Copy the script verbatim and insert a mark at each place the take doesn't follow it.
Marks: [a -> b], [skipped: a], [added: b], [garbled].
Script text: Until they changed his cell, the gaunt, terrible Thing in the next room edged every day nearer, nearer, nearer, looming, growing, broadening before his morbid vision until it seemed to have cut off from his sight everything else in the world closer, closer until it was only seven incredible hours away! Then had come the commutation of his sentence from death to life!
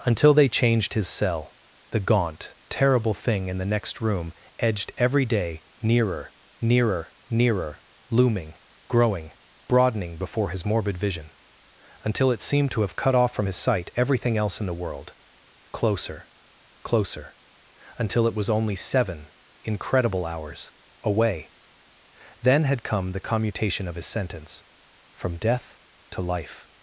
Until they changed his cell, the gaunt, terrible Thing in the next room edged every day nearer, nearer, nearer, looming, growing, broadening before his morbid vision until it seemed to have cut off from his sight everything else in the world closer, closer until it was only seven incredible hours away! Then had come the commutation of his sentence from death to life!